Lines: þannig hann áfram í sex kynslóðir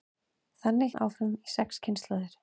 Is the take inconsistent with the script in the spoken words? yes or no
no